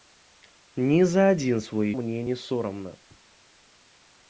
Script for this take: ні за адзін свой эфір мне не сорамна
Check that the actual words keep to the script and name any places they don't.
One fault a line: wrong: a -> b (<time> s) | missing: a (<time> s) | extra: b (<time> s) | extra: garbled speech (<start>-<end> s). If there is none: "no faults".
missing: эфір (1.9 s)